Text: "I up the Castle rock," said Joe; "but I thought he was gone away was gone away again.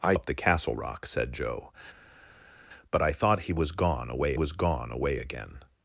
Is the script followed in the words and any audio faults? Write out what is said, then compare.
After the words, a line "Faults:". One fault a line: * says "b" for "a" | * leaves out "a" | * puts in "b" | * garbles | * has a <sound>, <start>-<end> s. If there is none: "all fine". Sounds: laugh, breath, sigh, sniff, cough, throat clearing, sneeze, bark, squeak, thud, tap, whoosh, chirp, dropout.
"I up the Castle rock," said Joe; "but I thought he was gone away was gone away again.
Faults:
all fine